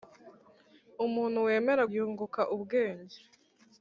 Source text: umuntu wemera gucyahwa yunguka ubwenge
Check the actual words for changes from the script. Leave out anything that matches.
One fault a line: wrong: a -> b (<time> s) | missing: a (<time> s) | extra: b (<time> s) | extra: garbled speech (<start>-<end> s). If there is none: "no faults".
missing: gucyahwa (1.8 s)